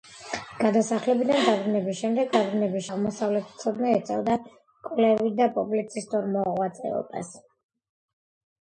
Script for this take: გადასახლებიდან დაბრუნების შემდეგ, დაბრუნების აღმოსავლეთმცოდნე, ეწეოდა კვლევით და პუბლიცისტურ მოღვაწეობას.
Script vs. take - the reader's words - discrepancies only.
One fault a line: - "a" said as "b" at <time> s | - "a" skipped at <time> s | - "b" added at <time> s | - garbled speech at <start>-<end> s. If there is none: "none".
none